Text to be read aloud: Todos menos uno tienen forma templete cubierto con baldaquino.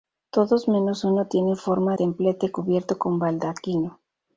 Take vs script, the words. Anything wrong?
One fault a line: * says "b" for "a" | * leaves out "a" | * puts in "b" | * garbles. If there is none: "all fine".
all fine